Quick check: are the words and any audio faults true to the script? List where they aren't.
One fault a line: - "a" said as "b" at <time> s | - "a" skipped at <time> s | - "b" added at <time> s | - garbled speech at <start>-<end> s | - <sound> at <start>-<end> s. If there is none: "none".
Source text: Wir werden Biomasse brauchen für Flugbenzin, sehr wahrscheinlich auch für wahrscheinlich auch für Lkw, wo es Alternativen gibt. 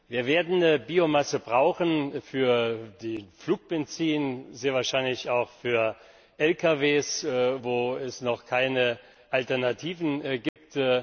- "wahrscheinlich auch für" skipped at 6.0 s
- "noch keine" added at 8.2 s
- dropout at 10.5-10.6 s